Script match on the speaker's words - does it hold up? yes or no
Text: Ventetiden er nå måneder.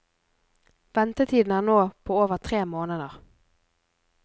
no